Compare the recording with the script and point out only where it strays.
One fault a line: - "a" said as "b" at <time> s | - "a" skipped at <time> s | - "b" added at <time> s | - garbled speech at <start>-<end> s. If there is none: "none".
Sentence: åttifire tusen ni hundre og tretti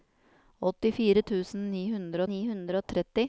- "ni hundre" added at 2.3 s